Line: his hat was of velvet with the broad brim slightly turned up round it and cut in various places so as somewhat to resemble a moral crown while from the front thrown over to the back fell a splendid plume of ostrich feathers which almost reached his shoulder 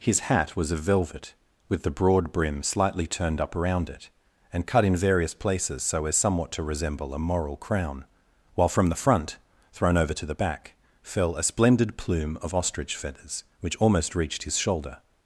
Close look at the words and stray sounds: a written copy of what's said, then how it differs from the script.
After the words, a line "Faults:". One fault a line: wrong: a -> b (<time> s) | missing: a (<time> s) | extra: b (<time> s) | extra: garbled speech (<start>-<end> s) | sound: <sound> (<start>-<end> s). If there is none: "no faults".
his hat was of velvet with the broad brim slightly turned up around it and cut in various places so as somewhat to resemble a moral crown while from the front thrown over to the back fell a splendid plume of ostrich feathers which almost reached his shoulder
Faults:
wrong: round -> around (3.5 s)